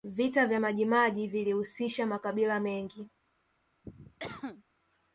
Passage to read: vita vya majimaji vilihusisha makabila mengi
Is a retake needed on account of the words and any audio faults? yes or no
yes